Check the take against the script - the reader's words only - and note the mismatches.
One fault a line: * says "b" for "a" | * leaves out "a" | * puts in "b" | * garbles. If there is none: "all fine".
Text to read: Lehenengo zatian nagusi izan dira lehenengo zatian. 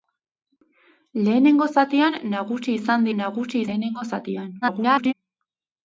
* says "nagusi" for "dira"
* garbles